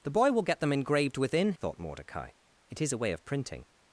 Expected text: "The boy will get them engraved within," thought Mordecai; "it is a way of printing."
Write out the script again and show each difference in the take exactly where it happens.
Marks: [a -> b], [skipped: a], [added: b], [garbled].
"The boy will get them engraved within," thought Mordecai; "it is a way of printing."